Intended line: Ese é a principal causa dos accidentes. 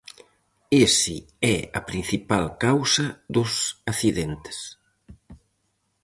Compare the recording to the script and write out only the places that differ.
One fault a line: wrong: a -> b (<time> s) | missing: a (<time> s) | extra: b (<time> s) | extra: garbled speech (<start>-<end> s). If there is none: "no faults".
no faults